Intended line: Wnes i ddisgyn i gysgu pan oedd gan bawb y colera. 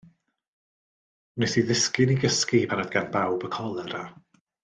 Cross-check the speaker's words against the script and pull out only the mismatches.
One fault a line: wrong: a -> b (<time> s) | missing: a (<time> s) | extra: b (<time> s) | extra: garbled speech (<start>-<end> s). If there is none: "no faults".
no faults